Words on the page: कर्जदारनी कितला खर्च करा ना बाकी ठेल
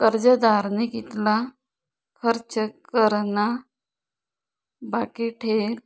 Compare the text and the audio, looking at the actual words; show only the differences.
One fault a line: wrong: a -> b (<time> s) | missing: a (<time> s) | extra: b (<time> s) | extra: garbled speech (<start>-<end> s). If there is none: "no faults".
no faults